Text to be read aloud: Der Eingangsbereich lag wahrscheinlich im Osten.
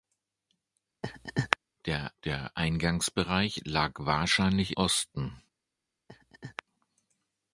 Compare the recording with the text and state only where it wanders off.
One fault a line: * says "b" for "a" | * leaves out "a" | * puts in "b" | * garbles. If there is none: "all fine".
* puts in "der"
* leaves out "im"